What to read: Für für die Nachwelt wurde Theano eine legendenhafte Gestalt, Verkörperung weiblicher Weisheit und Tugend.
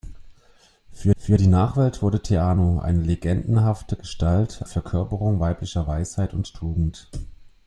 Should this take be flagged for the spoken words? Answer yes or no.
no